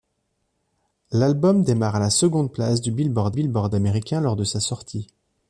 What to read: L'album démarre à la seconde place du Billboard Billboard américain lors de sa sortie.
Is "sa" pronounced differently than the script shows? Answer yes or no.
no